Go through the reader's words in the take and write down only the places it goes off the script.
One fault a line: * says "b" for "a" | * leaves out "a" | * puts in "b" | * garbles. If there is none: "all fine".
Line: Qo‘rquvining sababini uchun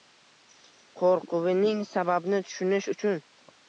* puts in "tushunish"